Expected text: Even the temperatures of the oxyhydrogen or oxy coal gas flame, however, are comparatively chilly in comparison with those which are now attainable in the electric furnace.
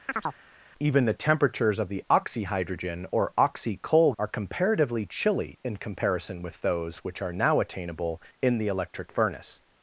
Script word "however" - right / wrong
wrong